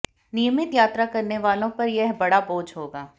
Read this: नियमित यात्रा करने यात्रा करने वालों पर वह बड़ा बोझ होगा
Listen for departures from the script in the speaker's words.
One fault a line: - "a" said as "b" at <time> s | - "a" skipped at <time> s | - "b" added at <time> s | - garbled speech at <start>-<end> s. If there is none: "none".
- "यात्रा करने" skipped at 1.4 s
- "वह" said as "यह" at 1.9 s